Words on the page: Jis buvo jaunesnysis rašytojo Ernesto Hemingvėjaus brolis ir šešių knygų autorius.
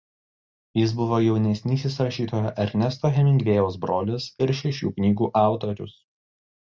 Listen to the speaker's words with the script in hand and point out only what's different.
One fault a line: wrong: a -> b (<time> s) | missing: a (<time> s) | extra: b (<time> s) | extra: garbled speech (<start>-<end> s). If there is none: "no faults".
no faults